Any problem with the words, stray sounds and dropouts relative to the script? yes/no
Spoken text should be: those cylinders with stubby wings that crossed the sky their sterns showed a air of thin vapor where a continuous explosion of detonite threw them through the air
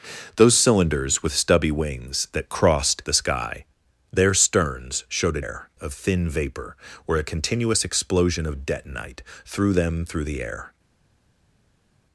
no